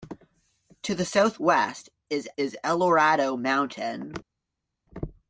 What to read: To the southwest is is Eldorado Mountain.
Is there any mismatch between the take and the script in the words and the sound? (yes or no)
no